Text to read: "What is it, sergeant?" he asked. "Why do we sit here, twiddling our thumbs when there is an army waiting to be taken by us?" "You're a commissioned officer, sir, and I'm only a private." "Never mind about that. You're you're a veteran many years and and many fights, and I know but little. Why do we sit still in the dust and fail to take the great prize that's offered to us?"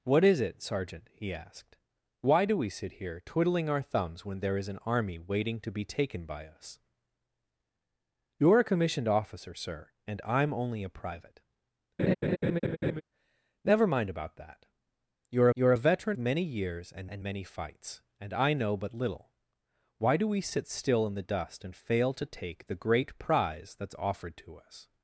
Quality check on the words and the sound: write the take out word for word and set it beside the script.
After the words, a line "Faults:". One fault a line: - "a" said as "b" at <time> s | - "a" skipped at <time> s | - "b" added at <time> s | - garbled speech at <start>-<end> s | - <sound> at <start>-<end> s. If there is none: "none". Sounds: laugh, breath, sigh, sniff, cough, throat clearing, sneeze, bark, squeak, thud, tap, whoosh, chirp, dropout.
"What is it, sergeant?" he asked. "Why do we sit here, twiddling our thumbs when there is an army waiting to be taken by us?" "You're a commissioned officer, sir, and I'm only a private." "Never mind about that. You're you're a veteran many years and and many fights, and I know but little. Why do we sit still in the dust and fail to take the great prize that's offered to us?"
Faults:
- laugh at 12.0-13.0 s